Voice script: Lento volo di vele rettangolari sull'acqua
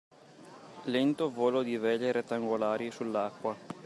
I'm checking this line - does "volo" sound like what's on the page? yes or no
yes